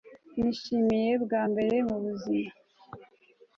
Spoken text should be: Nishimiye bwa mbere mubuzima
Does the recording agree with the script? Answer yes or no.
yes